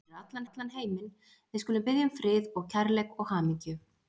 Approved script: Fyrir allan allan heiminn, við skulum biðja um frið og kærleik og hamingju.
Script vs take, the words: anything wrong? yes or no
no